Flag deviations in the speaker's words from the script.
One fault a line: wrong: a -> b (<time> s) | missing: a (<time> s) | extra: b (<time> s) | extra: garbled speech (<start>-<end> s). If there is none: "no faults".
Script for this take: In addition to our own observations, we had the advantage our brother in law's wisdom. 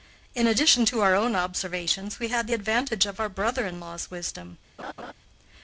extra: of (3.0 s)